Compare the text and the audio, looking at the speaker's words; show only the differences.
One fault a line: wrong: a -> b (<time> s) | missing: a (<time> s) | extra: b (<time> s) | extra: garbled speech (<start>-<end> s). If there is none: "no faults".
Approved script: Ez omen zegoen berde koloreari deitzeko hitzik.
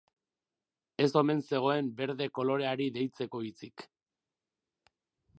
no faults